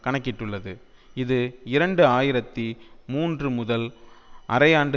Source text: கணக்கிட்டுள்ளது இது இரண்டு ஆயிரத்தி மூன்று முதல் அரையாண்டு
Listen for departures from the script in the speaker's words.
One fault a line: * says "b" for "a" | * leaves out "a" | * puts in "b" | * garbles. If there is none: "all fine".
all fine